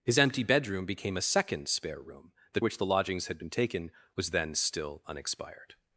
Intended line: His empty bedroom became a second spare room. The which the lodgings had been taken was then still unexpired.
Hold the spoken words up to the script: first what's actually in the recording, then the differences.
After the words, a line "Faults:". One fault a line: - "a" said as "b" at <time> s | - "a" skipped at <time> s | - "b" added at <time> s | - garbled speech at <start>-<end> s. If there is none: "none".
His empty bedroom became a second spare room. The which the lodgings had been taken was then still unexpired.
Faults:
none